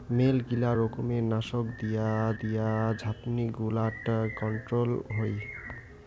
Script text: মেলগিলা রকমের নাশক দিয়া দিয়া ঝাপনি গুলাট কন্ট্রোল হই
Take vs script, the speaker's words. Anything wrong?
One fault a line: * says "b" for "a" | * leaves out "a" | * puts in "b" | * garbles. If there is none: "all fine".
all fine